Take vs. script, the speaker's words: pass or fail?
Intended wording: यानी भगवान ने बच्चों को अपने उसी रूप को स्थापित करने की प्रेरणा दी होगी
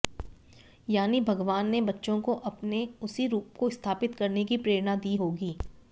pass